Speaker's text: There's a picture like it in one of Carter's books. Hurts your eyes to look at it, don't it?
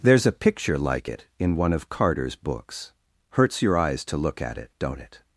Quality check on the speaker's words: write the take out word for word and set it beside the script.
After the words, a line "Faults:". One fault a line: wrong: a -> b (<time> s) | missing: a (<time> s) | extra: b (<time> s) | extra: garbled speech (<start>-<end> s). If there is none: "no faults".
There's a picture like it in one of Carter's books. Hurts your eyes to look at it, don't it?
Faults:
no faults